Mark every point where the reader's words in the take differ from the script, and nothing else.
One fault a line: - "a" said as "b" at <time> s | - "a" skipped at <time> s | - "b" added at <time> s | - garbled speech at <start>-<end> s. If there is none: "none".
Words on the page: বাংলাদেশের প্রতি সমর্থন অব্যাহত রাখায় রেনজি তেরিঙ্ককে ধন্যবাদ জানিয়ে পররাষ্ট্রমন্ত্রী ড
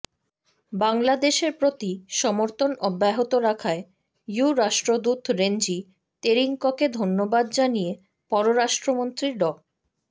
- "ইইউ রাষ্ট্রদূত" added at 4.3 s